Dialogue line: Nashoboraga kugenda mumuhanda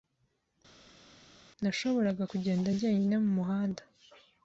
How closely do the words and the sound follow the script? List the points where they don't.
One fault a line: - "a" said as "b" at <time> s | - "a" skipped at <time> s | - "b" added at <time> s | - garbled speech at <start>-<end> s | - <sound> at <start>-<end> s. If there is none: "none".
- "njyenyine" added at 2.7 s